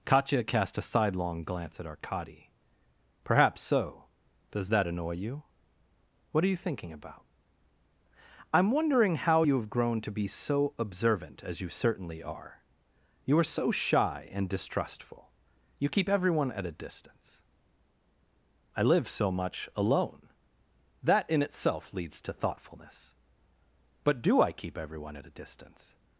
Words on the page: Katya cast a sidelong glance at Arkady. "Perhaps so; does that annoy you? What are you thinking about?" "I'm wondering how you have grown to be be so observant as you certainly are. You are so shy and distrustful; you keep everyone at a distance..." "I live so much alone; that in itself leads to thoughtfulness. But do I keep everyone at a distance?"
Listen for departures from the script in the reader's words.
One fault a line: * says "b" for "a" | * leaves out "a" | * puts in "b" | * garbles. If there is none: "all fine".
* leaves out "be"